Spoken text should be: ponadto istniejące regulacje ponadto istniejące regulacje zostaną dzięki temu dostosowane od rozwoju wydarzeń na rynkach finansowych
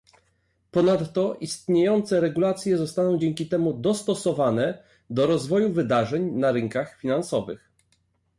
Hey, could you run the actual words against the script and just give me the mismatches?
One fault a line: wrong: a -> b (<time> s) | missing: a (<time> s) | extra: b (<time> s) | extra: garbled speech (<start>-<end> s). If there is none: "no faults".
missing: ponadto istniejące regulacje (2.8 s)
wrong: od -> do (5.1 s)